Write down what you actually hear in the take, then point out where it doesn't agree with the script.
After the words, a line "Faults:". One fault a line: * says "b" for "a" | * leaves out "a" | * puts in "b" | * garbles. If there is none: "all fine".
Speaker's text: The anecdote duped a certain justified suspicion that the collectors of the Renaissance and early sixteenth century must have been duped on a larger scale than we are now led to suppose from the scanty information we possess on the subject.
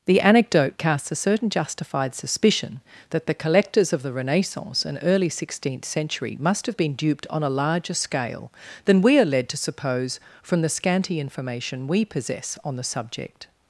The anecdote casts a certain justified suspicion that the collectors of the Renaissance and early sixteenth century must have been duped on a larger scale than we are led to suppose from the scanty information we possess on the subject.
Faults:
* says "casts" for "duped"
* leaves out "now"